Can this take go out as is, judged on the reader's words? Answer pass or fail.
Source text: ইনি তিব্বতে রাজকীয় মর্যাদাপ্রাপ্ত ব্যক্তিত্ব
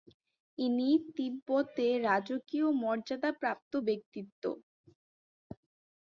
pass